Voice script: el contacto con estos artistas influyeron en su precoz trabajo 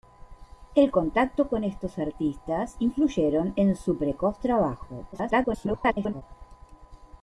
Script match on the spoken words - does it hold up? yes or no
no